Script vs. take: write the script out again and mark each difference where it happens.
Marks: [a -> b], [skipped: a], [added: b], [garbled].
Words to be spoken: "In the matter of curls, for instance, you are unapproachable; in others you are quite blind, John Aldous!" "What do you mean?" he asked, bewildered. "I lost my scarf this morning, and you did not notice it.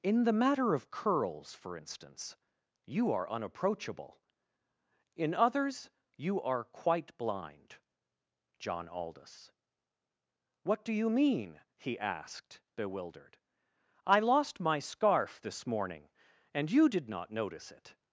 "In the matter of curls, for instance, you are unapproachable; in others you are quite blind, John Aldous!" "What do you mean?" he asked, bewildered. "I lost my scarf this morning, and you did not notice it.